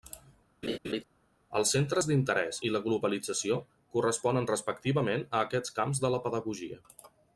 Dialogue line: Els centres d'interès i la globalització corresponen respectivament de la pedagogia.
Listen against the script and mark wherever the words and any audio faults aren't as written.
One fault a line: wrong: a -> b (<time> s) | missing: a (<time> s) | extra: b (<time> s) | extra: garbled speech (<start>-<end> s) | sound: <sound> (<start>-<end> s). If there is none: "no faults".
sound: laugh (0.6-1.0 s)
extra: a aquests camps (5.3 s)